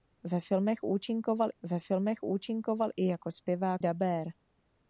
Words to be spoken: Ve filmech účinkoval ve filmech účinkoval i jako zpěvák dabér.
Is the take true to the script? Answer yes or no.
yes